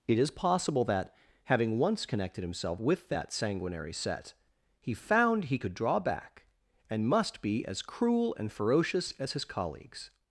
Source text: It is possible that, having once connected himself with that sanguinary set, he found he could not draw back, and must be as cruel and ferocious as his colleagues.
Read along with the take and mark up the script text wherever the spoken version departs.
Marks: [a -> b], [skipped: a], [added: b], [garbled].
It is possible that, having once connected himself with that sanguinary set, he found he could [skipped: not] draw back, and must be as cruel and ferocious as his colleagues.